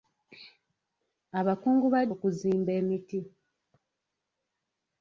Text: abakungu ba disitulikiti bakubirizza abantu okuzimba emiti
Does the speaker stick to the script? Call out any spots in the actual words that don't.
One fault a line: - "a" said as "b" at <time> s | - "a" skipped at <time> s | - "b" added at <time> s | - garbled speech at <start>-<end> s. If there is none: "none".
- "disitulikiti bakubirizza abantu" skipped at 2.0 s